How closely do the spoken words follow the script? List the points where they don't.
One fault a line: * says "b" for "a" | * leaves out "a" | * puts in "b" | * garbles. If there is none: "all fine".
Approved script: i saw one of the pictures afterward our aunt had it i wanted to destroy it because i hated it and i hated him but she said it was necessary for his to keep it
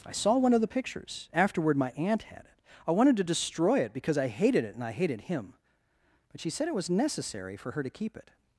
* says "my" for "our"
* says "her" for "his"